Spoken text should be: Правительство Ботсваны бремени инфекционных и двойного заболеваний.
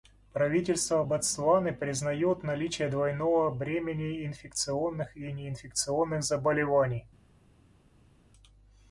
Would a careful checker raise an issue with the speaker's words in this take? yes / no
yes